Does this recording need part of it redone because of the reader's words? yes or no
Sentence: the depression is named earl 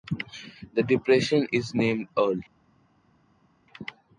no